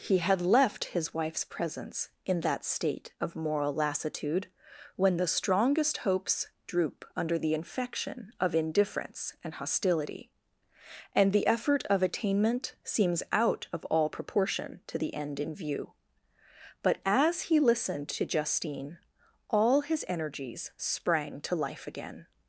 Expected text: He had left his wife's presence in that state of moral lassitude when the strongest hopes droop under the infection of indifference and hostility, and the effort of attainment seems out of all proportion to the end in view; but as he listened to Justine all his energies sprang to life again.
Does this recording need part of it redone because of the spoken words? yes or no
no